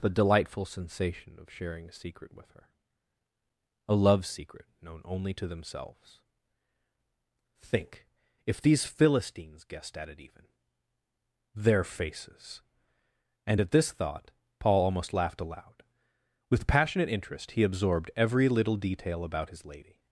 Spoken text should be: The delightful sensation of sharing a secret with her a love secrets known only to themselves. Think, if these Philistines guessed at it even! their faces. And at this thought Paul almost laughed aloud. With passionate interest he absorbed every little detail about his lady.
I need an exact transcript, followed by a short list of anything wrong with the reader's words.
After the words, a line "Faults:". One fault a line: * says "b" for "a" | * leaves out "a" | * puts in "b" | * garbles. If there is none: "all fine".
The delightful sensation of sharing a secret with her a love secret known only to themselves. Think, if these Philistines guessed at it even! their faces. And at this thought Paul almost laughed aloud. With passionate interest he absorbed every little detail about his lady.
Faults:
* says "secret" for "secrets"